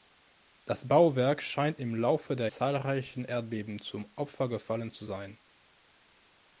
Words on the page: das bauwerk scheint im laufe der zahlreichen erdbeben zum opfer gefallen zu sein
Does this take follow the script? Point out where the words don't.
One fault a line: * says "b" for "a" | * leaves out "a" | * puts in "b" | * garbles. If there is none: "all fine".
all fine